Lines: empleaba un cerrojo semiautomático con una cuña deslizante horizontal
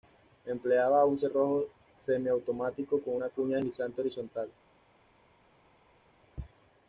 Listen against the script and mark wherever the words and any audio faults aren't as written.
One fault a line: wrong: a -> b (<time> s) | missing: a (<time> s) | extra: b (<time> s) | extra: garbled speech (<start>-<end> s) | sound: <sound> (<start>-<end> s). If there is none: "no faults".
no faults